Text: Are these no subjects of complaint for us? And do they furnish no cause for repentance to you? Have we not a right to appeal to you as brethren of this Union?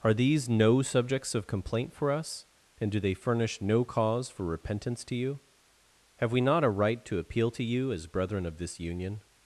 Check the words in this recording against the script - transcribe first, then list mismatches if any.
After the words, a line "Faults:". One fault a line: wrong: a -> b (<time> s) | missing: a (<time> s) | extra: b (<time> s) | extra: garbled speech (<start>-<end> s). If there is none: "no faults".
Are these no subjects of complaint for us? And do they furnish no cause for repentance to you? Have we not a right to appeal to you as brethren of this Union?
Faults:
no faults